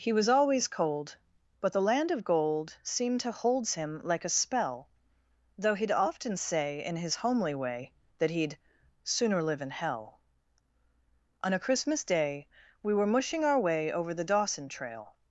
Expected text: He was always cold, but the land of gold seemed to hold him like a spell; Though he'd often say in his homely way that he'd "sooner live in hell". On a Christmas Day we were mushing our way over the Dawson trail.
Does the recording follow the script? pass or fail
fail